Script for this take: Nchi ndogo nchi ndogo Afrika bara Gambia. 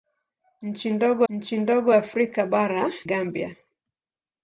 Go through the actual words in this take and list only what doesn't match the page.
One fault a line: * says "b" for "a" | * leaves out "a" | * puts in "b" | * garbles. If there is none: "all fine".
all fine